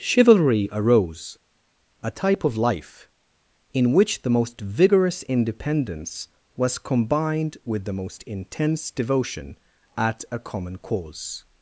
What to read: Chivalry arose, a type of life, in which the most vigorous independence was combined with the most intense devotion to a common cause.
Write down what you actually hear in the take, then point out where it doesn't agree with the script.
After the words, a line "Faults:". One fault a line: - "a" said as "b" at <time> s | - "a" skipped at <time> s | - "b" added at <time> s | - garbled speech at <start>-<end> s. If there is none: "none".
Chivalry arose, a type of life, in which the most vigorous independence was combined with the most intense devotion at a common cause.
Faults:
- "to" said as "at" at 10.0 s